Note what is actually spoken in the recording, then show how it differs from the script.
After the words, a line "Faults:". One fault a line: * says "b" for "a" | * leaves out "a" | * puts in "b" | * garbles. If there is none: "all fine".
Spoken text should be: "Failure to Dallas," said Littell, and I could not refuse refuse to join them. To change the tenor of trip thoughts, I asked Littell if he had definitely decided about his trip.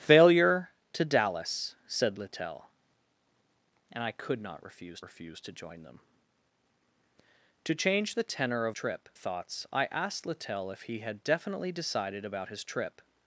"Failure to Dallas," said Littell, and I could not refuse refuse to join them. To change the tenor of trip thoughts, I asked Littell if he had definitely decided about his trip.
Faults:
all fine